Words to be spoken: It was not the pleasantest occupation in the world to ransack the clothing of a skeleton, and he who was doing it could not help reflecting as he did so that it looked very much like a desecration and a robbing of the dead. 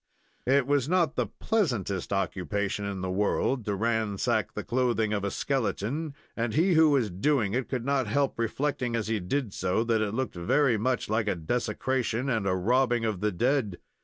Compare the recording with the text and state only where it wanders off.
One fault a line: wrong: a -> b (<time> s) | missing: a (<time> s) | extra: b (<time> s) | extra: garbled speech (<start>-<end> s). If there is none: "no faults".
no faults